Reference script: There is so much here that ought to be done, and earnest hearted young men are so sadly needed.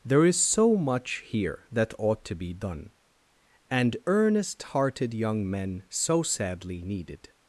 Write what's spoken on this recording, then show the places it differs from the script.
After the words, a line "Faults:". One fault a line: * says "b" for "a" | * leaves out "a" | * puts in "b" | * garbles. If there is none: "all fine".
There is so much here that ought to be done, and earnest hearted young men so sadly needed.
Faults:
* leaves out "are"